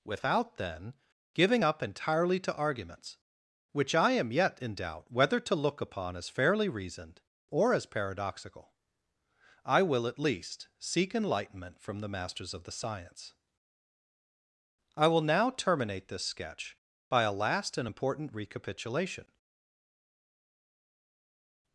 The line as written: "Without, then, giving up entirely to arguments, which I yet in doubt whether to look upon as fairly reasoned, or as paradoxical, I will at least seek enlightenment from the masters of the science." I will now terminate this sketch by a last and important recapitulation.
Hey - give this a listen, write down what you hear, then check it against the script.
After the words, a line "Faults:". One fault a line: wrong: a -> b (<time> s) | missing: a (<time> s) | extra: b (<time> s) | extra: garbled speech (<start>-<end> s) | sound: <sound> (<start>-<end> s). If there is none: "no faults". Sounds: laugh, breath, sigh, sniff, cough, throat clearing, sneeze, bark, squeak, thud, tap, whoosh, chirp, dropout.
"Without, then, giving up entirely to arguments, which I am yet in doubt whether to look upon as fairly reasoned, or as paradoxical, I will at least seek enlightenment from the masters of the science." I will now terminate this sketch by a last and important recapitulation.
Faults:
extra: am (4.1 s)